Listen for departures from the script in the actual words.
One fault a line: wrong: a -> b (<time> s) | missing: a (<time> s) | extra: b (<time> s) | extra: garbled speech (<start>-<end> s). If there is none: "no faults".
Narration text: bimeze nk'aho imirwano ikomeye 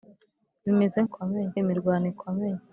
wrong: nk'aho -> ikomeye (1.1 s)